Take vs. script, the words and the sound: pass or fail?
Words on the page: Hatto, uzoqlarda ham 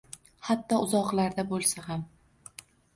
fail